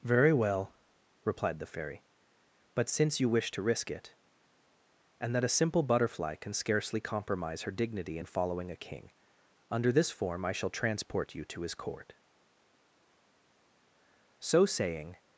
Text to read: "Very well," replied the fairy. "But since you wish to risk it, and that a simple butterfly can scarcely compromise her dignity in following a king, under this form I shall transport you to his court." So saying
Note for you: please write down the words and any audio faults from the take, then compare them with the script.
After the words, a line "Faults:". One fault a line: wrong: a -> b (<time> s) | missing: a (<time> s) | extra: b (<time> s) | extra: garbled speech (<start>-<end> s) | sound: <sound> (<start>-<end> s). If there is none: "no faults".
"Very well," replied the fairy. "But since you wish to risk it, and that a simple butterfly can scarcely compromise her dignity in following a king, under this form I shall transport you to his court." So saying
Faults:
no faults